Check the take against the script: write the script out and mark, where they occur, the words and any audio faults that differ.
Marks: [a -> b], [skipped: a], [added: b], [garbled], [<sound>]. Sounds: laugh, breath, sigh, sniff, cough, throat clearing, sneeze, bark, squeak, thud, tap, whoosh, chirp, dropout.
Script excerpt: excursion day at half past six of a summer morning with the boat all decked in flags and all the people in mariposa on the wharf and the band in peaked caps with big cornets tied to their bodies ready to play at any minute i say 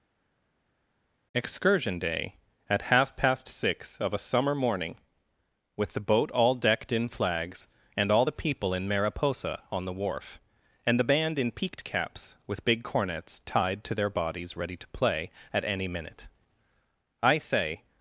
excursion day at half past six of a summer morning with the boat all decked in flags and all the people in mariposa on the wharf and the band in peaked caps with big cornets tied to their bodies ready to play at any minute i say